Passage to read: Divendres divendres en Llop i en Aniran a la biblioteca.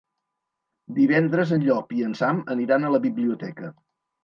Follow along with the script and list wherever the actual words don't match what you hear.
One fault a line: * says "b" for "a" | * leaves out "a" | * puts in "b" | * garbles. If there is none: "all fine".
* leaves out "divendres"
* puts in "Sam"